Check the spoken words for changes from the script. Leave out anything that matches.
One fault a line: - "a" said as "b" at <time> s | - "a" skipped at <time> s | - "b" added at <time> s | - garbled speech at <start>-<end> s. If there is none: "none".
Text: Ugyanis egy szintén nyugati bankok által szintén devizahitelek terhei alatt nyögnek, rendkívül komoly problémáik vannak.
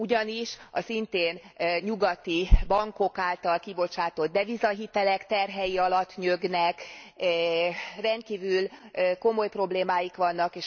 - "egy" said as "a" at 0.7 s
- "szintén" said as "kibocsátott" at 3.6 s